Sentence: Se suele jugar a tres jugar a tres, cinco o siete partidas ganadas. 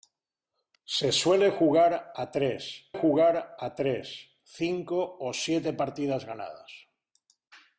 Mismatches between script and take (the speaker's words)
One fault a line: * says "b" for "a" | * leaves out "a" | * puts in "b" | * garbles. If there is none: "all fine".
all fine